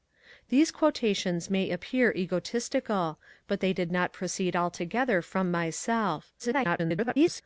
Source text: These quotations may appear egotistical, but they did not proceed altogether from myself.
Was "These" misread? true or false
false